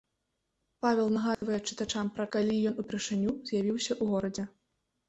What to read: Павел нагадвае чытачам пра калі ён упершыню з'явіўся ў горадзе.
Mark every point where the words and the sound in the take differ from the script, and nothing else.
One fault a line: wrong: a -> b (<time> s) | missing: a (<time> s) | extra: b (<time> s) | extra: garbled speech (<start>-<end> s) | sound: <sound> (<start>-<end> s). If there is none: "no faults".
sound: dropout (1.3-1.4 s)